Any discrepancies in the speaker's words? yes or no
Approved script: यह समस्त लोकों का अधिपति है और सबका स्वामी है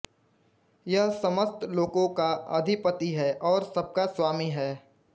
no